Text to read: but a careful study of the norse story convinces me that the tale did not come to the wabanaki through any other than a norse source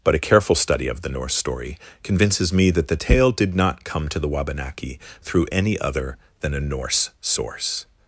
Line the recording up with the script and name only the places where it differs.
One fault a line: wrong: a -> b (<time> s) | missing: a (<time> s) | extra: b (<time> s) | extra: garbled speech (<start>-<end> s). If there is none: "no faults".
no faults